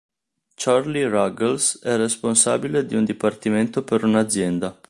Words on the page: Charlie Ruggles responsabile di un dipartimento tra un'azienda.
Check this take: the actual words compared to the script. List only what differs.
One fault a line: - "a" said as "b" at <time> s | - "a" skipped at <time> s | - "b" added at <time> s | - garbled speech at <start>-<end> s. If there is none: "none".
- "è" added at 1.8 s
- "tra" said as "per" at 3.8 s